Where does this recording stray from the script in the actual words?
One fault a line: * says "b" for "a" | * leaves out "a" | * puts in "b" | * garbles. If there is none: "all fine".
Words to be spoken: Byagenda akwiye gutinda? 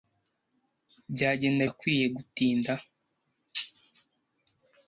all fine